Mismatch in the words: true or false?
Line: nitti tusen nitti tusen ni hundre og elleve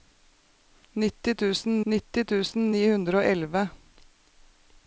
false